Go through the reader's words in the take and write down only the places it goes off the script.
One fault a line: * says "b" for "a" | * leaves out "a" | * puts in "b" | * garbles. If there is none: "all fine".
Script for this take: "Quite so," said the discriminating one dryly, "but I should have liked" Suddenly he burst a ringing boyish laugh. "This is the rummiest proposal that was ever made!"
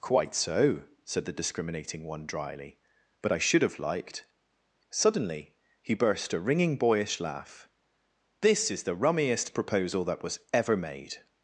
all fine